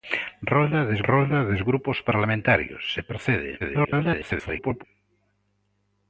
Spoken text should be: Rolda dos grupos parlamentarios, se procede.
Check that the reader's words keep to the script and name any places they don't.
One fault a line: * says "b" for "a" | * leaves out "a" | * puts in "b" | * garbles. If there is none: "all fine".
* puts in "rolda dos"
* garbles